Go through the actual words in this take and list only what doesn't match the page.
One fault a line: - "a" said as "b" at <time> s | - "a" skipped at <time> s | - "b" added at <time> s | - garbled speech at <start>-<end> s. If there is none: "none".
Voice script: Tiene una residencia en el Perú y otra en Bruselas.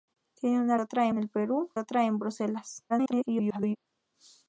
- "residencia" said as "otra" at 0.8 s
- "y" skipped at 1.7 s
- garbled speech at 2.9-3.8 s